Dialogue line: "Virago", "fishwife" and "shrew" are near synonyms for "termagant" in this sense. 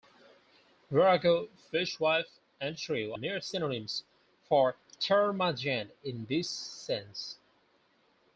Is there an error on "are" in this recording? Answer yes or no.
yes